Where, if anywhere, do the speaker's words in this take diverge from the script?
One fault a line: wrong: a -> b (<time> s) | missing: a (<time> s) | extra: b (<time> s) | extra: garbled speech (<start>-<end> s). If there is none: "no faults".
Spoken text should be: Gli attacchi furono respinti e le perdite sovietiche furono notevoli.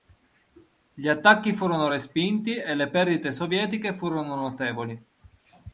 no faults